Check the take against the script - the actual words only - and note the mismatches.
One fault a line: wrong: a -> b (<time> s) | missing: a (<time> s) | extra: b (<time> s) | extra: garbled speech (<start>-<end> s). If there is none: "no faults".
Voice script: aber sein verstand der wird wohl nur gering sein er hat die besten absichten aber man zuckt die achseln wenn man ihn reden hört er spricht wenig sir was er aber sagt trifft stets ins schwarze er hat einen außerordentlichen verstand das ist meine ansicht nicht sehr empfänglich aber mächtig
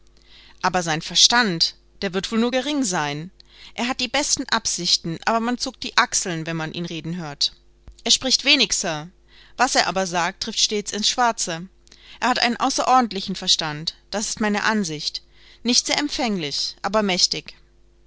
no faults